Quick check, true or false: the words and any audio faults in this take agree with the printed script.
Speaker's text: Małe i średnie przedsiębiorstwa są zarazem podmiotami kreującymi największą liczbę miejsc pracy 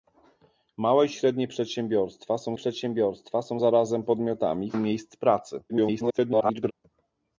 false